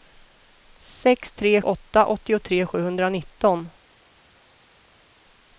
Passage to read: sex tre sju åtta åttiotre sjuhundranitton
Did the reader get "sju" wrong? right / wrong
wrong